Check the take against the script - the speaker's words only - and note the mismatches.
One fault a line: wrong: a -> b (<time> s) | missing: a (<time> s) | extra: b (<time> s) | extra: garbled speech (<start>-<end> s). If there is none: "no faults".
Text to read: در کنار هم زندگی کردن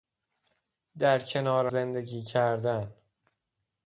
missing: هم (1.7 s)